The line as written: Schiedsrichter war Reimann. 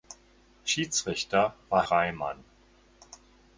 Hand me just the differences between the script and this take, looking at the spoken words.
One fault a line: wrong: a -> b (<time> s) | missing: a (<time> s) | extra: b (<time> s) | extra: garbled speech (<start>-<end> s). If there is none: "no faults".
no faults